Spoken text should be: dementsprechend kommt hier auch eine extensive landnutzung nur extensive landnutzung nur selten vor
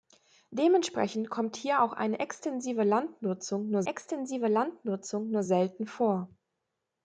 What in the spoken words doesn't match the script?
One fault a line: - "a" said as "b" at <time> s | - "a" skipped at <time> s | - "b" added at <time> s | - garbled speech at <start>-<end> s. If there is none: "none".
none